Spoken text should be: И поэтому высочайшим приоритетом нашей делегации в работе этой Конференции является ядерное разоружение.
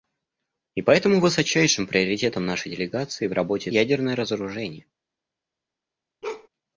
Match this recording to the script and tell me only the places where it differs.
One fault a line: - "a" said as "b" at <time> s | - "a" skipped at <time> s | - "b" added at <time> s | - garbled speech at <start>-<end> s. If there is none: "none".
- "этой Конференции является" skipped at 3.7 s